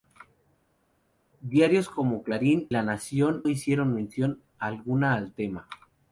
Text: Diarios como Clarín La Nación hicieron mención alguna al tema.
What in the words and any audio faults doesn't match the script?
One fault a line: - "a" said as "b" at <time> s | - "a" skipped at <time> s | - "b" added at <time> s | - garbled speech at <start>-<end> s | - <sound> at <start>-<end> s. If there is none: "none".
none